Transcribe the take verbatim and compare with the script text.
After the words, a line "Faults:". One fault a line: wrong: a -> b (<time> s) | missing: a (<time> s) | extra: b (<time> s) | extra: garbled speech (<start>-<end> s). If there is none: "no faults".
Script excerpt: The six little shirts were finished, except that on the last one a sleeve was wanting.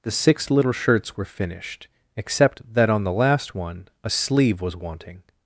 The six little shirts were finished, except that on the last one a sleeve was wanting.
Faults:
no faults